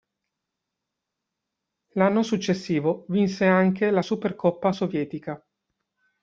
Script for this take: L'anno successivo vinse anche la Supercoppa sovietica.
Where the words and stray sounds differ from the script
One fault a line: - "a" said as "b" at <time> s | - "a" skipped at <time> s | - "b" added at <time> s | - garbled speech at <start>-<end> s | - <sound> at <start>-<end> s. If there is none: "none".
none